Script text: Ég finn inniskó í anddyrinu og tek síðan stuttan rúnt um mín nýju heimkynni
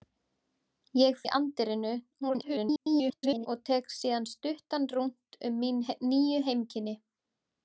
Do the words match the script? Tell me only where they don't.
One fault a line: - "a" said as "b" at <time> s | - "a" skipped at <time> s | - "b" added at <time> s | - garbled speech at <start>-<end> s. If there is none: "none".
- "finn inniskó" skipped at 1.2 s
- garbled speech at 2.2-3.5 s